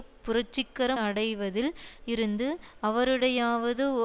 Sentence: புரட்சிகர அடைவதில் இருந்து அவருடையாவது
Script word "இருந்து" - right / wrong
right